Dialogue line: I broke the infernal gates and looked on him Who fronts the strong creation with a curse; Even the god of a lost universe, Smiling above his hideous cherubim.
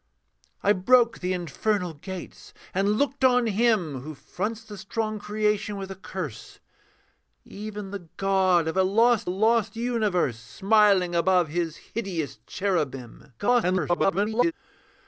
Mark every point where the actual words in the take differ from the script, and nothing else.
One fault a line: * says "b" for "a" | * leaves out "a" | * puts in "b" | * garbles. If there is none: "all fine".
* puts in "lost"
* garbles